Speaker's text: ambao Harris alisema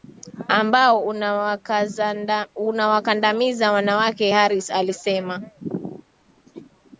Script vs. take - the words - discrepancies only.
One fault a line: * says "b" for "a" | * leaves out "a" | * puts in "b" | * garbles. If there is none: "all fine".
* puts in "unawakandamiza wanawake"